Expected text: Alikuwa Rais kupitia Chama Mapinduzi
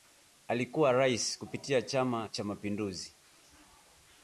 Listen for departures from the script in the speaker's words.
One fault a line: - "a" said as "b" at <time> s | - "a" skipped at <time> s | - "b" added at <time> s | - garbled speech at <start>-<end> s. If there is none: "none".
- "Cha" added at 2.3 s